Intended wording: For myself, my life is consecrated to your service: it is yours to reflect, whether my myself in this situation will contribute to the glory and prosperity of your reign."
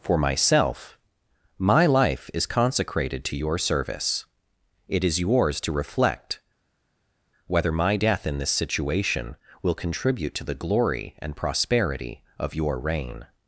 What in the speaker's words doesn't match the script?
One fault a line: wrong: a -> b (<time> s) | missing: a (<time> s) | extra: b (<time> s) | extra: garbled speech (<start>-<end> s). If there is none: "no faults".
wrong: myself -> death (7.9 s)